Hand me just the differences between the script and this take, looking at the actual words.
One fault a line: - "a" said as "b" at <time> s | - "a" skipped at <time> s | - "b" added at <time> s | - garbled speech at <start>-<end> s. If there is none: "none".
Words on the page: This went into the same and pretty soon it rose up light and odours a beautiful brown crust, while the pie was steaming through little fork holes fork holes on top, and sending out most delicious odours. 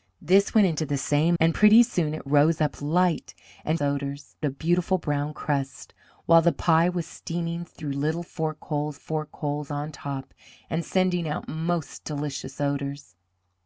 none